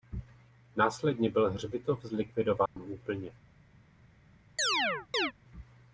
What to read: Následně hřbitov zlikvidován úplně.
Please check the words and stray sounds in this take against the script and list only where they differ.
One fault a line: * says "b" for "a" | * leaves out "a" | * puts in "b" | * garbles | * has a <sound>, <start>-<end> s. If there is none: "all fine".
* puts in "byl"
* has a dropout, 2.7-2.8 s
* has a chirp, 4.6-5.3 s